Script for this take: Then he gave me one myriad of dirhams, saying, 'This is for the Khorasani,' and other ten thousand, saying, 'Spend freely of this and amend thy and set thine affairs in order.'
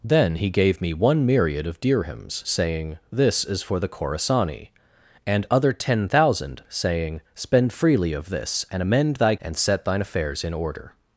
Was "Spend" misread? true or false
false